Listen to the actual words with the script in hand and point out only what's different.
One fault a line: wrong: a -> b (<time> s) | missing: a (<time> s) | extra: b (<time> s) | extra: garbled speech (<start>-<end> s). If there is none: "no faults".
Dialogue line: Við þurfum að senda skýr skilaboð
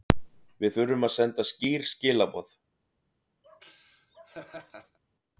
no faults